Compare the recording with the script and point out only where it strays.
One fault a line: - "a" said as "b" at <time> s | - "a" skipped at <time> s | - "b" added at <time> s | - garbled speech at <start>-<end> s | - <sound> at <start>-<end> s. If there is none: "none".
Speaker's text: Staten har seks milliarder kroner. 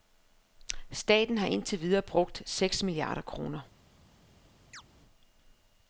- "indtil videre brugt" added at 1.5 s
- chirp at 4.7-4.8 s